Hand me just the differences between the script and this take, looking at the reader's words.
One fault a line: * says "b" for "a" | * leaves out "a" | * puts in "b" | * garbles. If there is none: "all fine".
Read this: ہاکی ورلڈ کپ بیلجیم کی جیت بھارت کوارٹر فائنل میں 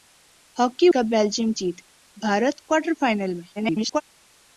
* leaves out "ورلڈ"
* leaves out "کی"
* garbles